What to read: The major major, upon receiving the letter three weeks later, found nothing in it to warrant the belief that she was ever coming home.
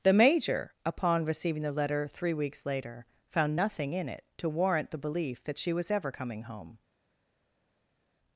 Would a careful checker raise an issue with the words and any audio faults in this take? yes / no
yes